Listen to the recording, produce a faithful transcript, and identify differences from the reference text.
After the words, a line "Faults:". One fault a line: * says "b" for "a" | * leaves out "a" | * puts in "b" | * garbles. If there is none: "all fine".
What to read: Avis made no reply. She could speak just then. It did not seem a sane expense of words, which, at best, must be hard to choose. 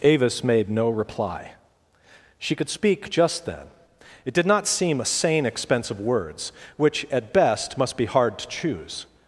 Avis made no reply. She could speak just then. It did not seem a sane expense of words, which, at best, must be hard to choose.
Faults:
all fine